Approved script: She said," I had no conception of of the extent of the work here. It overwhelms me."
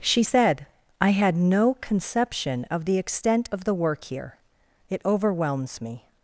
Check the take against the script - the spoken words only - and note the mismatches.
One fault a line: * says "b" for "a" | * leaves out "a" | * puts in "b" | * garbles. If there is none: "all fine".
* leaves out "of"